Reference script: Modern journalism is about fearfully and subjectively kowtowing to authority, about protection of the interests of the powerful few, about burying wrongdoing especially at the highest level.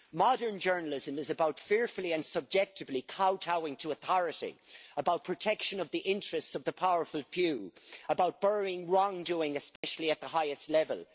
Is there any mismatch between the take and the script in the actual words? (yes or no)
no